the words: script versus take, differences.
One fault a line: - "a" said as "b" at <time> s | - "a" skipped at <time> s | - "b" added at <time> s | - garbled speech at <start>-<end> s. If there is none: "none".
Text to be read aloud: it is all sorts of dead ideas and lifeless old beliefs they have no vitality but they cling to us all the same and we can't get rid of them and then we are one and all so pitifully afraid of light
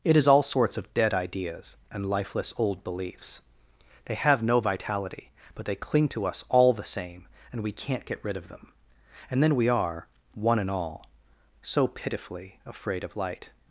none